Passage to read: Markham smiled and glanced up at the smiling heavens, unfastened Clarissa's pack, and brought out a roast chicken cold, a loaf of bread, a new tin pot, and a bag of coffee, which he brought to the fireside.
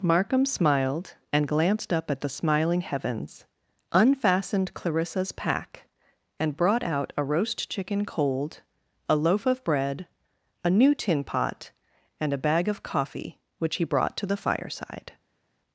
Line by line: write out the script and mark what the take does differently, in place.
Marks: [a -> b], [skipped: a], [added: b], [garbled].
Markham smiled and glanced up at the smiling heavens, unfastened Clarissa's pack, and brought out a roast chicken cold, a loaf of bread, a new tin pot, and a bag of coffee, which he brought to the fireside.